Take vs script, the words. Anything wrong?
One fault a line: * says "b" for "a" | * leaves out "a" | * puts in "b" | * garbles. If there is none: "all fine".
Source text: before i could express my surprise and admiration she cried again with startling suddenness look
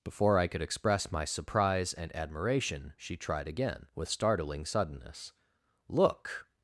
* says "tried" for "cried"